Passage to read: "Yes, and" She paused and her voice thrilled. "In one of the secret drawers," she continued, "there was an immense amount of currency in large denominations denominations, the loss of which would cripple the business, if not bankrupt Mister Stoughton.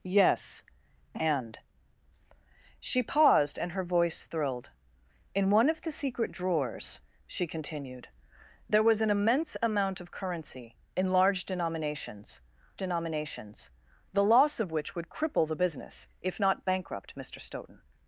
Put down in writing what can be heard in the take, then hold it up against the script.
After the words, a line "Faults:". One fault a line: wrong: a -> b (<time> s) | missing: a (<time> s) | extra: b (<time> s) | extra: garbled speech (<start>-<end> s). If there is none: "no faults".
"Yes, and" She paused and her voice thrilled. "In one of the secret drawers," she continued, "there was an immense amount of currency in large denominations denominations, the loss of which would cripple the business, if not bankrupt Mister Stoughton.
Faults:
no faults